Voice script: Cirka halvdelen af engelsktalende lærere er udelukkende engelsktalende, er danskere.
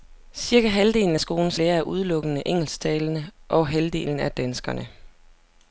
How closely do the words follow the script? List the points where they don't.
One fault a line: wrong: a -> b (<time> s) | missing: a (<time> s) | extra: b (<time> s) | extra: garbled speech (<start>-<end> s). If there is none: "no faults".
wrong: engelsktalende -> skolens (1.2 s)
extra: og halvdelen (3.5 s)